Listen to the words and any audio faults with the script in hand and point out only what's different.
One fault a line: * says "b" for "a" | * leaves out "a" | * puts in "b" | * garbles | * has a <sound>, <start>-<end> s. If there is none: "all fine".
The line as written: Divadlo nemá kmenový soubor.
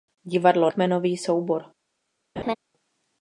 * leaves out "nemá"
* has a laugh, 2.4-2.6 s